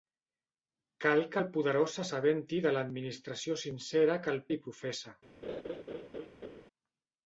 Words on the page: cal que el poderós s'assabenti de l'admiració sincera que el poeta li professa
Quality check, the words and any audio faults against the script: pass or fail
fail